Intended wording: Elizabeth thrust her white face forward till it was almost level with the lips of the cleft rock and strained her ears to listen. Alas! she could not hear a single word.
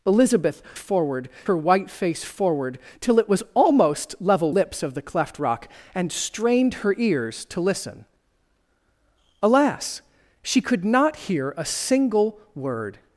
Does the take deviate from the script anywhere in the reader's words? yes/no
yes